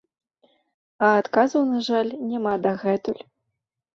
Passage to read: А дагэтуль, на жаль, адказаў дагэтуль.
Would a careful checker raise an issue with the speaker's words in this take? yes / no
yes